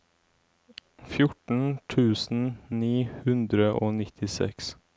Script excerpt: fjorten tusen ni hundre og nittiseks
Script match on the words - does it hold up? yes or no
yes